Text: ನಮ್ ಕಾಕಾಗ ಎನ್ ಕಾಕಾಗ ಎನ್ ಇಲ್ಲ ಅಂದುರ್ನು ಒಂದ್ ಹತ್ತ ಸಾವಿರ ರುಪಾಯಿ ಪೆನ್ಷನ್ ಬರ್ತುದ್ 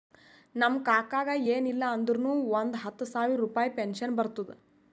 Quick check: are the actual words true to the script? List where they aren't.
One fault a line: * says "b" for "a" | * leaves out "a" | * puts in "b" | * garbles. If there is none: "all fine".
* leaves out "ಕಾಕಾಗ ಎನ್"